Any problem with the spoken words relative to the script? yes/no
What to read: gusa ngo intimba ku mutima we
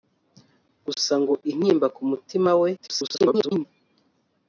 yes